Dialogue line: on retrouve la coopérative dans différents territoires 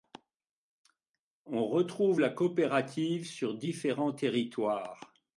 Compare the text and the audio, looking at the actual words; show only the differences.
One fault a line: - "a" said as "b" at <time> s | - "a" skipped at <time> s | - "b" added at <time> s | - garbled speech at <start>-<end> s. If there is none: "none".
- "dans" said as "sur" at 3.3 s